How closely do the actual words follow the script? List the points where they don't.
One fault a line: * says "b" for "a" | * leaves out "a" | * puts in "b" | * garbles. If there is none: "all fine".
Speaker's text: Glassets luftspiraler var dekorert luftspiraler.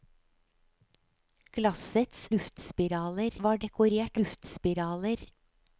all fine